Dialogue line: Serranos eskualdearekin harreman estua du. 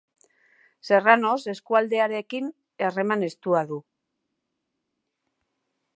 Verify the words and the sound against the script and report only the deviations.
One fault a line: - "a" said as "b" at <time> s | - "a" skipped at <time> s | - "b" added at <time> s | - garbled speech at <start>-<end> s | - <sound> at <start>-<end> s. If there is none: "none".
none